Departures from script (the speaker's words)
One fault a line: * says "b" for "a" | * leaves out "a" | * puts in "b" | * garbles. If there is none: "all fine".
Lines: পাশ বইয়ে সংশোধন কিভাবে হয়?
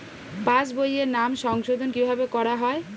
* puts in "নাম"
* puts in "করা"